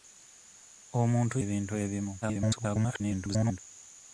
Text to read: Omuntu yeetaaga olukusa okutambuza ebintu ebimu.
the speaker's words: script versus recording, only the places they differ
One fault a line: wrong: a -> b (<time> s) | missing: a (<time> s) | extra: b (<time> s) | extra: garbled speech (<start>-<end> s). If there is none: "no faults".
missing: yeetaaga olukusa okutambuza (1.4 s)
extra: garbled speech (2.2-3.6 s)